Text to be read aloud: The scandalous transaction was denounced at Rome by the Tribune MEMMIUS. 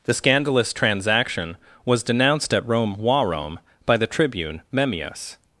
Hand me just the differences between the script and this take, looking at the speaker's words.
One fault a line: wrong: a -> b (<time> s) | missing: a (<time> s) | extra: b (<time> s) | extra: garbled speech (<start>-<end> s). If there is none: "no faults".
extra: Rome (3.0 s)